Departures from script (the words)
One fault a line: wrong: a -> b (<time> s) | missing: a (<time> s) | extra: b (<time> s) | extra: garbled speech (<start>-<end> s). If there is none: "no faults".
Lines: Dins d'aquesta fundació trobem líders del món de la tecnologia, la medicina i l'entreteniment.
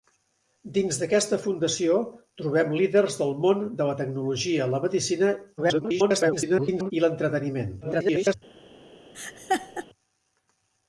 extra: garbled speech (5.6-6.9 s)
extra: garbled speech (7.8-8.3 s)